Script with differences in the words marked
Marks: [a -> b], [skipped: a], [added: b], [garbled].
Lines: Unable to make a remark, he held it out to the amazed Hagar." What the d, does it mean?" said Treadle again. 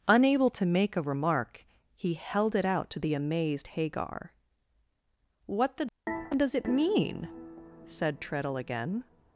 Unable to make a remark, he held it out to the amazed Hagar." What the d, does it mean?" said Treadle again.